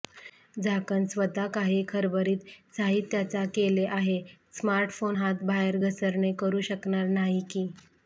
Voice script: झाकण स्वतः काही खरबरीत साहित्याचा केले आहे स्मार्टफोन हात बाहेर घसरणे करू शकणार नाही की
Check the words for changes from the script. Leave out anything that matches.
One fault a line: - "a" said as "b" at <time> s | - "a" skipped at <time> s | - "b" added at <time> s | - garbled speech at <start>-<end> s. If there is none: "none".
none